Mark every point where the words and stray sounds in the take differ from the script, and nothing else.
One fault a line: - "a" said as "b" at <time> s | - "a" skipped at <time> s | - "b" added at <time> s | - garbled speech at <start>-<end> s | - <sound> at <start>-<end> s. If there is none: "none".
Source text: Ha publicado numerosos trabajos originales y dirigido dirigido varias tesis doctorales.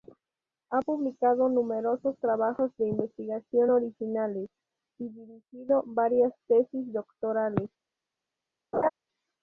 - "de investigación" added at 2.8 s
- "dirigido" skipped at 5.8 s
- laugh at 8.7-8.9 s